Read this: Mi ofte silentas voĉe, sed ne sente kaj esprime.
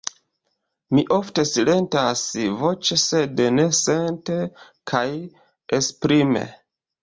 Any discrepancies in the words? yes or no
no